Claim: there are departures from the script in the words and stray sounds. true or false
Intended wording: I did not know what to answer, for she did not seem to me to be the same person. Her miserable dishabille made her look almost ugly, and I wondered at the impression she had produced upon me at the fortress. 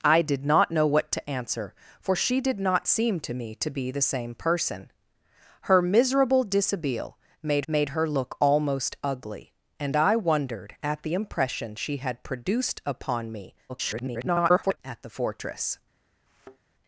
true